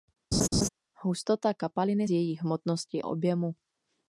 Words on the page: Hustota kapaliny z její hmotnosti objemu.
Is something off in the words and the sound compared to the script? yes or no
yes